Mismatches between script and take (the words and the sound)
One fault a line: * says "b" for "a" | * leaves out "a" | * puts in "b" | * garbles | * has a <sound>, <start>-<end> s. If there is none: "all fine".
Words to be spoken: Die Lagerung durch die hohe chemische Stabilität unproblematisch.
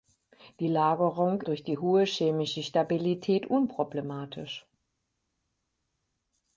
all fine